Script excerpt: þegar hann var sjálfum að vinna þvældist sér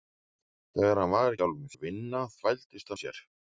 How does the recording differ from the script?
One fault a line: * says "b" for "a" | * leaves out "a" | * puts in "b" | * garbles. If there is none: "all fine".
all fine